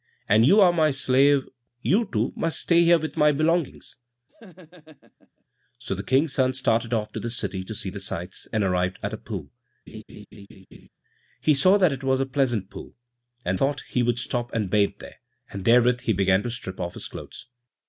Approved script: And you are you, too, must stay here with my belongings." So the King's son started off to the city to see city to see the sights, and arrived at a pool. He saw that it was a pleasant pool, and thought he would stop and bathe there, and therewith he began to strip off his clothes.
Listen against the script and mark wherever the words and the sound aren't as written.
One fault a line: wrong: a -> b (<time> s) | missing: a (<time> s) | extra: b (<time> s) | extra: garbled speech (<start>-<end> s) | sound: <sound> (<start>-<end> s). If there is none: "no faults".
extra: my slave (0.7 s)
sound: laugh (4.3-5.4 s)
missing: city to see (7.9 s)
sound: laugh (9.9-10.9 s)